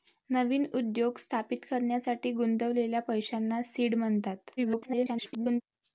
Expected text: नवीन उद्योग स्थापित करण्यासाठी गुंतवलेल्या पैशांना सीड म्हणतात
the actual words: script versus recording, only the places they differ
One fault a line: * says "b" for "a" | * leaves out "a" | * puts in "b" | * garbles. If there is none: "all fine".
* garbles